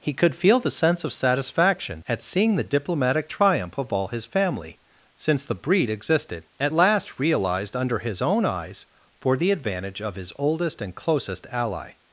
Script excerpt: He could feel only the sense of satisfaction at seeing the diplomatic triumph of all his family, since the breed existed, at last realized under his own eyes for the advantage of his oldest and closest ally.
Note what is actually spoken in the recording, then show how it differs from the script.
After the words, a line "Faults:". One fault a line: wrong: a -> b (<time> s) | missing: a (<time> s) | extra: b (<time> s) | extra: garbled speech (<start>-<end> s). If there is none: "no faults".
He could feel the sense of satisfaction at seeing the diplomatic triumph of all his family, since the breed existed, at last realized under his own eyes for the advantage of his oldest and closest ally.
Faults:
missing: only (0.6 s)